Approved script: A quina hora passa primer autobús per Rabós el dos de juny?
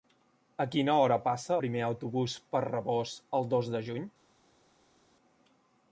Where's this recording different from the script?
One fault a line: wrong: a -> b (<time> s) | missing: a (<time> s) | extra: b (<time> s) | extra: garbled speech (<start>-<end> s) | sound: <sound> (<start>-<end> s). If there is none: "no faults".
no faults